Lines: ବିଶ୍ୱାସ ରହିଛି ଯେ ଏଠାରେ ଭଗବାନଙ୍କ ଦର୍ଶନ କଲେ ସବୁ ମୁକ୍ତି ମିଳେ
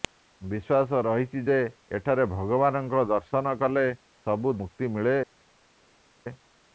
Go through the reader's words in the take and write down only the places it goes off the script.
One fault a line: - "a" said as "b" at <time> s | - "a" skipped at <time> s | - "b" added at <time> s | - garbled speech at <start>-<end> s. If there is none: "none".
none